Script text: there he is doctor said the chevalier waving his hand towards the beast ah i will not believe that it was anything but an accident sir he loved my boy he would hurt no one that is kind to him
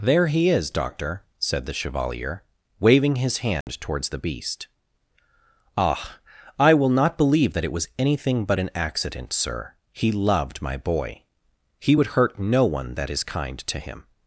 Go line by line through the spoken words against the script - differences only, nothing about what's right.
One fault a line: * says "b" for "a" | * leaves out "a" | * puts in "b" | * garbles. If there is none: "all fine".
all fine